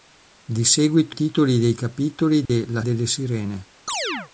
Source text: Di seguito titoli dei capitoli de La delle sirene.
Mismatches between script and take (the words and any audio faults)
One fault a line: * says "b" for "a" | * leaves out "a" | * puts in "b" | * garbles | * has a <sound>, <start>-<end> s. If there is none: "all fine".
* has a dropout, 2.5-2.5 s
* has a chirp, 3.9-4.3 s